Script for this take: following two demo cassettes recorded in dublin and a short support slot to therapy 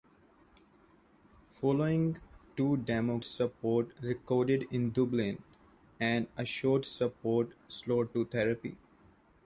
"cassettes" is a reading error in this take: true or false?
true